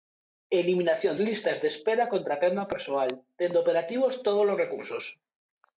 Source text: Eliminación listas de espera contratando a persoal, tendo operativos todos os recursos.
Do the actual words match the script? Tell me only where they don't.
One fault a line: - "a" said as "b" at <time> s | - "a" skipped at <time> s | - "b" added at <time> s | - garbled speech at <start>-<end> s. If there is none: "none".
none